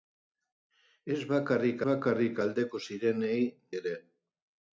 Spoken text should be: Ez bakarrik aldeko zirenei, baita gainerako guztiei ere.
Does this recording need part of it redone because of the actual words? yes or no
yes